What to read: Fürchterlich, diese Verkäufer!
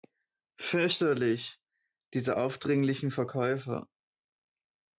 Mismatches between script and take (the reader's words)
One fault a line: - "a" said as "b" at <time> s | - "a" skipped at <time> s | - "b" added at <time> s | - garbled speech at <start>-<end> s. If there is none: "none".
- "aufdringlichen" added at 2.3 s